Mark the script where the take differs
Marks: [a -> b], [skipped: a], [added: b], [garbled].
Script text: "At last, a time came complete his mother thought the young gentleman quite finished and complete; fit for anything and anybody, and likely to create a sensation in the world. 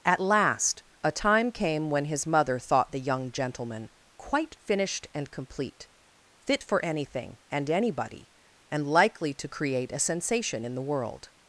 "At last, a time came [complete -> when] his mother thought the young gentleman quite finished and complete; fit for anything and anybody, and likely to create a sensation in the world.